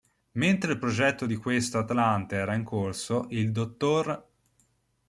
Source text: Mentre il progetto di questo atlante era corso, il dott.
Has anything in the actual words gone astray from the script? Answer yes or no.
yes